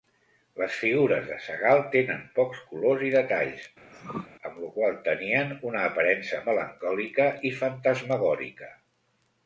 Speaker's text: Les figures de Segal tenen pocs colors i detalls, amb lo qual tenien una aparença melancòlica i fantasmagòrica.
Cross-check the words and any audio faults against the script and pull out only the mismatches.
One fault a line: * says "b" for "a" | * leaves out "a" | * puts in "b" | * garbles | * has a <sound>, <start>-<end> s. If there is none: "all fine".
* has a throat clearing, 3.9-4.3 s